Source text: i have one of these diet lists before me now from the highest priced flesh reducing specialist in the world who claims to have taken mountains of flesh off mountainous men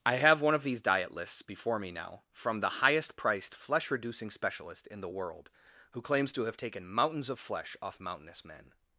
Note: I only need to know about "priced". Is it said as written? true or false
true